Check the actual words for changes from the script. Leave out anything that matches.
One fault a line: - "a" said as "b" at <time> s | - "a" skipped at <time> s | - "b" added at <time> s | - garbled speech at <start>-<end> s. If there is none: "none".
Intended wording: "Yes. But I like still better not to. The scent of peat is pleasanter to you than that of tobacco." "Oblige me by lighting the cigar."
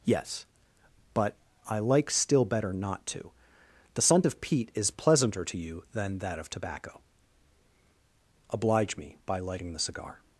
none